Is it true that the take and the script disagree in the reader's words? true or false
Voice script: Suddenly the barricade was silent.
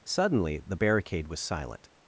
false